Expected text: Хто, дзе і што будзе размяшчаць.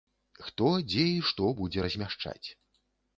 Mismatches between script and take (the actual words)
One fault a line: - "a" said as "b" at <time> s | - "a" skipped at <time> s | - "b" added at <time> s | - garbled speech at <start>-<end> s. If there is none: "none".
none